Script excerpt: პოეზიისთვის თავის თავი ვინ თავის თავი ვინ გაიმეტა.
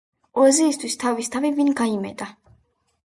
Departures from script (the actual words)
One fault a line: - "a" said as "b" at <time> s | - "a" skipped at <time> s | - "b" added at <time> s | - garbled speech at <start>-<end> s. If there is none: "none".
- "თავის თავი ვინ" skipped at 1.7 s